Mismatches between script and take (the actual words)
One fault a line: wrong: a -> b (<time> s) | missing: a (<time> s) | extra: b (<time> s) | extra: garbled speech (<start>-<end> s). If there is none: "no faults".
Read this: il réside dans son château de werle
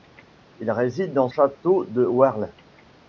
missing: son (1.3 s)